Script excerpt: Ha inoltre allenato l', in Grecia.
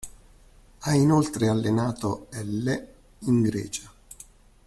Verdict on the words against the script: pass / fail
pass